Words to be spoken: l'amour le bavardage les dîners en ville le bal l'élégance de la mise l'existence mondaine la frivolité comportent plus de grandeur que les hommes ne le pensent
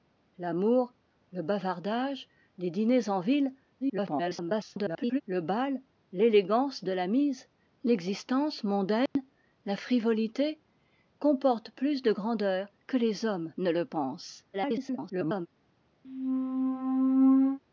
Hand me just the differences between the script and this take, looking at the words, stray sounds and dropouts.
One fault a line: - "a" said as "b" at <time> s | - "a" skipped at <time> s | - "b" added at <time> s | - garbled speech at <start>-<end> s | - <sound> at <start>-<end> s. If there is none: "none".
- garbled speech at 3.8-5.2 s
- dropout at 9.1-9.2 s
- garbled speech at 14.5-15.5 s
- squeak at 16.0-17.6 s